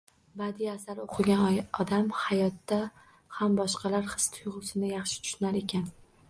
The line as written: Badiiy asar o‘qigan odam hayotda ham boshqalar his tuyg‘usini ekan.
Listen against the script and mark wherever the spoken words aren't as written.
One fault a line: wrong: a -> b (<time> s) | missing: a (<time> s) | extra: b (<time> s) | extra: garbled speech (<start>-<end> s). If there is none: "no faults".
extra: yaxshi tushunar (5.0 s)